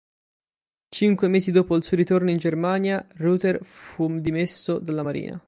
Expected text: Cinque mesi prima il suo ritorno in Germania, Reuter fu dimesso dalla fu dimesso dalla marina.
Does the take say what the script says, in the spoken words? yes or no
no